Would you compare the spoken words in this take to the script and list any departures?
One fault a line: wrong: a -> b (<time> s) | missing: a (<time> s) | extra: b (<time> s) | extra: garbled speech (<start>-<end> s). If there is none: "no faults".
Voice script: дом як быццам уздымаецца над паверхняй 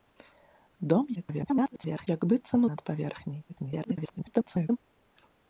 extra: garbled speech (1.2-2.1 s)
missing: уздымаецца (2.6 s)
extra: garbled speech (3.5-4.8 s)